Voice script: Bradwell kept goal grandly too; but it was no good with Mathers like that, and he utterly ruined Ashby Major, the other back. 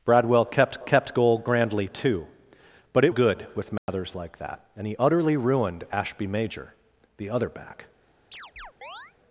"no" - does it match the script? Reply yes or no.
no